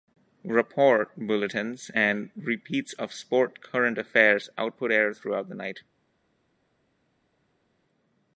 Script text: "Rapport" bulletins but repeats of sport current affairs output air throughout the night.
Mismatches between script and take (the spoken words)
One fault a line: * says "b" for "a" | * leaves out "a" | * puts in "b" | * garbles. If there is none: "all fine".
* says "and" for "but"